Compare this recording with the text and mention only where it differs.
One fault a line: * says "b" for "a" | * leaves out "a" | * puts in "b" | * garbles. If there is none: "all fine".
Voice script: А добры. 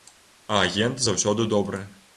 * puts in "агент заўсёды"